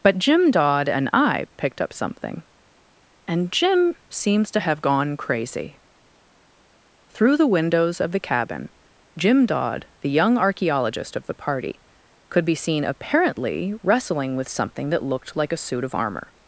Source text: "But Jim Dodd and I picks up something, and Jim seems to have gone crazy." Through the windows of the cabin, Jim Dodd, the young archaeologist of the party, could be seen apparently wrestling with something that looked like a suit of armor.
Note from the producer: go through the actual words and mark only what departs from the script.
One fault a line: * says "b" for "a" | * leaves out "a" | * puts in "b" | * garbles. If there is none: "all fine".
* says "picked" for "picks"